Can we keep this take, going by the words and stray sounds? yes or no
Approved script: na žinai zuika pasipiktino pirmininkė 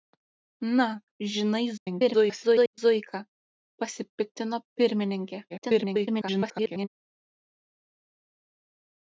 no